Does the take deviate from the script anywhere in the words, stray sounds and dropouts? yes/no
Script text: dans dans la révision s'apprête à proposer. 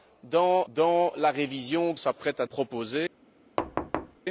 yes